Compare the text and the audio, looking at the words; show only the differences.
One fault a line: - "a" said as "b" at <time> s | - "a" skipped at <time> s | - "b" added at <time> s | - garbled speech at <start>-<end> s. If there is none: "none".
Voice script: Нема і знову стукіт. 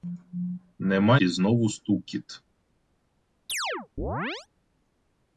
none